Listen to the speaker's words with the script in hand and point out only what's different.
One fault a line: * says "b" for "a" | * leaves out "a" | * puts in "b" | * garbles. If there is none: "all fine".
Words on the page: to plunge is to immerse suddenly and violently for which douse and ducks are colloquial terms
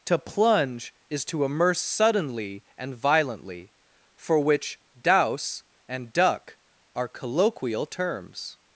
* says "duck" for "ducks"